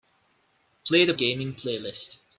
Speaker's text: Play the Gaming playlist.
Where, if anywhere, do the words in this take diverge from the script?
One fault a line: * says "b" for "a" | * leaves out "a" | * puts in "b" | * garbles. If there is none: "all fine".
all fine